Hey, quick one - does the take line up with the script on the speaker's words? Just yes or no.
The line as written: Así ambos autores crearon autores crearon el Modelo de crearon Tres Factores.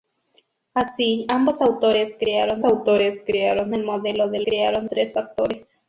yes